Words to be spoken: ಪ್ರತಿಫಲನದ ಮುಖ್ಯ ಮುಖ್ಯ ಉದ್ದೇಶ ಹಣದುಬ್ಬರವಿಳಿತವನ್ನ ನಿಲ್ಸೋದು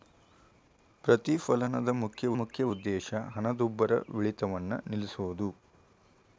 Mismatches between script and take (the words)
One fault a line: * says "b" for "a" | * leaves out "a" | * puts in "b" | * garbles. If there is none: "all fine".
all fine